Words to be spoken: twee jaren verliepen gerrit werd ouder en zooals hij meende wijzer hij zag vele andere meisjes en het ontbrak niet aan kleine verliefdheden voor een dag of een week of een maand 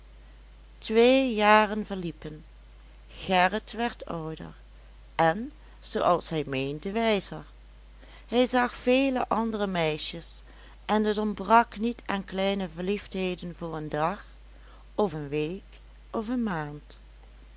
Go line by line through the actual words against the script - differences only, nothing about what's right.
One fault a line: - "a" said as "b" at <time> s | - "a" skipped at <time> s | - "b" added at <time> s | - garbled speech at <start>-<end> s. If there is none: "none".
none